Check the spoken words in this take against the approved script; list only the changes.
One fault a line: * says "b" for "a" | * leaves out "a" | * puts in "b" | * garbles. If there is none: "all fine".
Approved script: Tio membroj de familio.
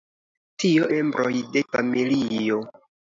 all fine